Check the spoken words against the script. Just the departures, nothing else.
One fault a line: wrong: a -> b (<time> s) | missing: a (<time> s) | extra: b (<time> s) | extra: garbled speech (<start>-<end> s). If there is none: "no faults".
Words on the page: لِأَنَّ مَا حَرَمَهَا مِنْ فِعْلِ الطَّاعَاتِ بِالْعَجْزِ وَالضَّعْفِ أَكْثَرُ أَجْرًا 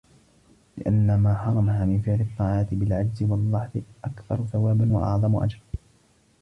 extra: ثَوَابًا وَأَعْظَمُ (4.4 s)